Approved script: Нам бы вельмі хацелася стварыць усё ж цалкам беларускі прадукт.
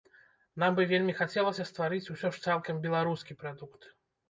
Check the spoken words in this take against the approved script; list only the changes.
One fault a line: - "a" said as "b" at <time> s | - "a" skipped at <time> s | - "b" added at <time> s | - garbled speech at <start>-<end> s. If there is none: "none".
none